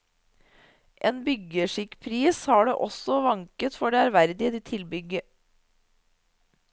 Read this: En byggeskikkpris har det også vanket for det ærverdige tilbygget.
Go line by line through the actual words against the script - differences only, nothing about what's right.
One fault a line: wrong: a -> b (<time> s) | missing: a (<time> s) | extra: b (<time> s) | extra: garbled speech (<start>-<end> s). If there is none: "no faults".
no faults